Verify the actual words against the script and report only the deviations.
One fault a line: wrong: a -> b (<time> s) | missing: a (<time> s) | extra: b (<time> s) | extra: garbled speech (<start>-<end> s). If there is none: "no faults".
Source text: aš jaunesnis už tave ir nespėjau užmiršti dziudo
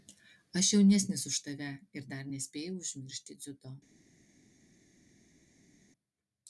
extra: dar (2.1 s)